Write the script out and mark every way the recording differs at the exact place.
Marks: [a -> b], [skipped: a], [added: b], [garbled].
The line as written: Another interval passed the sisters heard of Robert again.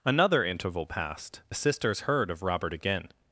Another interval passed the sisters heard of Robert again.